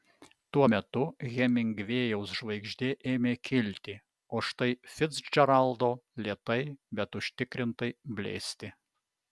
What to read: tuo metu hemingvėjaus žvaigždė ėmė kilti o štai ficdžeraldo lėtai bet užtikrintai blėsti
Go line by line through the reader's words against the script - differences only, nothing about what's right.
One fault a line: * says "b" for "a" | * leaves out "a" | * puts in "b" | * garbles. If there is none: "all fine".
all fine